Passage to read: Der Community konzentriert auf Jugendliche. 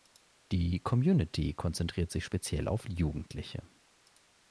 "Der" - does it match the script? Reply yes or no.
no